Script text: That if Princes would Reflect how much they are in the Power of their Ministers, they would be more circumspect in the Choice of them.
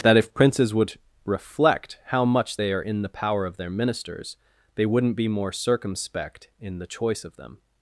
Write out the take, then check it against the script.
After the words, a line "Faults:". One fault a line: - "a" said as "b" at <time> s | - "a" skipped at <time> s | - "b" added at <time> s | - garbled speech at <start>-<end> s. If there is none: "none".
That if Princes would Reflect how much they are in the Power of their Ministers, they wouldn't be more circumspect in the Choice of them.
Faults:
- "would" said as "wouldn't" at 4.9 s